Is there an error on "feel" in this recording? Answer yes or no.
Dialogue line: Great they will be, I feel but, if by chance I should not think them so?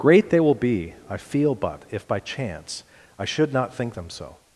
no